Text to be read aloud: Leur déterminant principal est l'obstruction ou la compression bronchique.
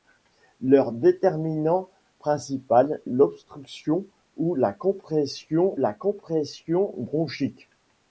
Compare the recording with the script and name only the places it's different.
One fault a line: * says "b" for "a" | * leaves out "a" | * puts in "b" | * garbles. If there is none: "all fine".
* leaves out "est"
* puts in "la compression"